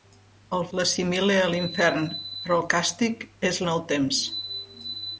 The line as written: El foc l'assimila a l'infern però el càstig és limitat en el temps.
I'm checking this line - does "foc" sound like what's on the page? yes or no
no